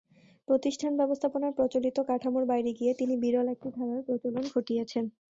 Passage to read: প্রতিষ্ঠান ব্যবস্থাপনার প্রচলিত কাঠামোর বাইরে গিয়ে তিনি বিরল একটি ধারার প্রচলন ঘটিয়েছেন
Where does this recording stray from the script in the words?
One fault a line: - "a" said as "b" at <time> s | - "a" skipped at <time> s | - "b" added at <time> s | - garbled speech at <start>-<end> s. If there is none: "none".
none